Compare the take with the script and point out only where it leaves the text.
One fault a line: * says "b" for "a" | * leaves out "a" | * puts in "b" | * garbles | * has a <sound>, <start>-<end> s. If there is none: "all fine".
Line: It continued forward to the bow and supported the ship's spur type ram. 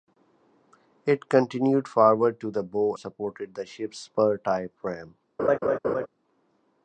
* leaves out "and"
* has a laugh, 5.4-6.1 s